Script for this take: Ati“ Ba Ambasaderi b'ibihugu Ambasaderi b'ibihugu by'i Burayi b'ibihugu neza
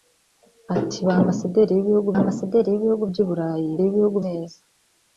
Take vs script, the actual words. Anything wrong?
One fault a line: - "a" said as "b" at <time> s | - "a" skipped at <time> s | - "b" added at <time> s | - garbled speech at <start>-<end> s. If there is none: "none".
none